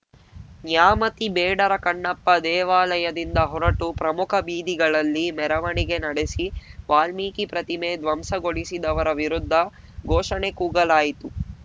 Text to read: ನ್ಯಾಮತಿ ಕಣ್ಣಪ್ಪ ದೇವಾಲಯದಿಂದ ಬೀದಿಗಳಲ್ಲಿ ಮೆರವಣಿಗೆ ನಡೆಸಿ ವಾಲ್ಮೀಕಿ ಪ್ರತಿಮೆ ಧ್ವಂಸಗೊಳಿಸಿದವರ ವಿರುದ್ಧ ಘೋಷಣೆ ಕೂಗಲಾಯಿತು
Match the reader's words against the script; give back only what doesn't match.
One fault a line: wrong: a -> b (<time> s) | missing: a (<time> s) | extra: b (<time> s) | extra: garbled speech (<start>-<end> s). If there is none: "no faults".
extra: ಬೇಡರ (1.3 s)
extra: ಹೊರಟು ಪ್ರಮುಖ (3.5 s)